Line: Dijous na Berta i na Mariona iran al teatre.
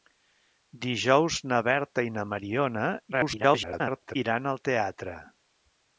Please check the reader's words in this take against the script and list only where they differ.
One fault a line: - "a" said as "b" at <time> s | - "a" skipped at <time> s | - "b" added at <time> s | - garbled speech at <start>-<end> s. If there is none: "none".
- garbled speech at 3.1-4.2 s